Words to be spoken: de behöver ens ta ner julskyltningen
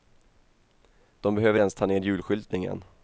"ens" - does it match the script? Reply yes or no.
yes